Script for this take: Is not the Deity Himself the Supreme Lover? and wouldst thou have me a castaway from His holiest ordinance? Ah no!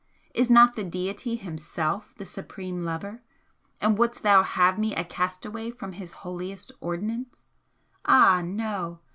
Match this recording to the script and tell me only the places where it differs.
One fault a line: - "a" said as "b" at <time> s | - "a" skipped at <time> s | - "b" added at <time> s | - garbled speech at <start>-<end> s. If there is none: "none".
none